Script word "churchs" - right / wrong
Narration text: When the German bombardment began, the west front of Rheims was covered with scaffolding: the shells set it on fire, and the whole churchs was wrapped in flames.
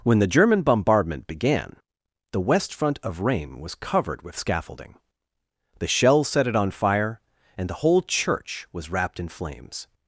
wrong